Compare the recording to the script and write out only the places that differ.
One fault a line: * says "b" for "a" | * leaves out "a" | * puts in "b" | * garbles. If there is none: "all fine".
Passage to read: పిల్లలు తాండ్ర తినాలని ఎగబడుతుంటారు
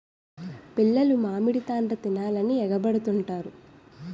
* puts in "మామిడి"